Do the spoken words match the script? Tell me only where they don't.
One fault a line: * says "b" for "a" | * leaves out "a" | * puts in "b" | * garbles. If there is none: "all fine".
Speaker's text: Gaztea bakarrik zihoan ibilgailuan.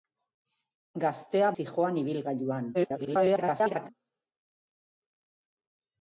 * leaves out "bakarrik"
* garbles